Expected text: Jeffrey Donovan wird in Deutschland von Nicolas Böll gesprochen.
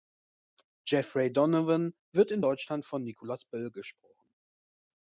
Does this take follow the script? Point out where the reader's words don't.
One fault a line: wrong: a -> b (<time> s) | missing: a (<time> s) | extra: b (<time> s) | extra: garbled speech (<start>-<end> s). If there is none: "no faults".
no faults